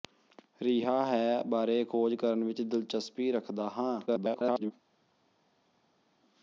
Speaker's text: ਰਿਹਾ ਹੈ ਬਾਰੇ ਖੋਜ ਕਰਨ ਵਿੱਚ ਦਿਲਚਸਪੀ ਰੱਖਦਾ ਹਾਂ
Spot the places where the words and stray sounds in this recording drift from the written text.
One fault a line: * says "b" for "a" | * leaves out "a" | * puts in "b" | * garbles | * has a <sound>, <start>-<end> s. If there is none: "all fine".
* garbles